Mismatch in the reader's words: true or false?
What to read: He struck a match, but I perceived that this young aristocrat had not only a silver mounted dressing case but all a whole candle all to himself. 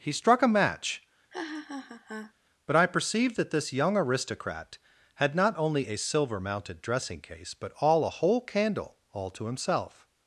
false